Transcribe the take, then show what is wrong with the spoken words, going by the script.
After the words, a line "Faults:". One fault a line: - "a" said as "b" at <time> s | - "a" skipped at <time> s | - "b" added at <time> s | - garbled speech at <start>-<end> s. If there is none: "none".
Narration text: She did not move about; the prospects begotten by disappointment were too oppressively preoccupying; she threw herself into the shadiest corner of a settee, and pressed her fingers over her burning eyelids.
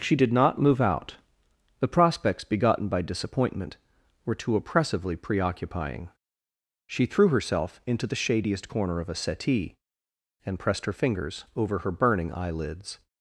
She did not move out; the prospects begotten by disappointment were too oppressively preoccupying; she threw herself into the shadiest corner of a settee, and pressed her fingers over her burning eyelids.
Faults:
- "about" said as "out" at 0.8 s